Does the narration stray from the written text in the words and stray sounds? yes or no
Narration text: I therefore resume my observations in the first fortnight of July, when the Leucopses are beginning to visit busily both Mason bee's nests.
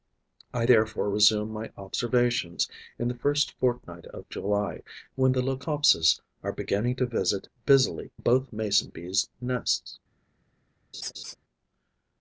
yes